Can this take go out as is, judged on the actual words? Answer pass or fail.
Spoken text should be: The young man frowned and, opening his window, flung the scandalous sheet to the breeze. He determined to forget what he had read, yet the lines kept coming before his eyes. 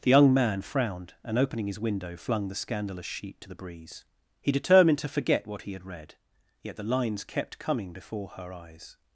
fail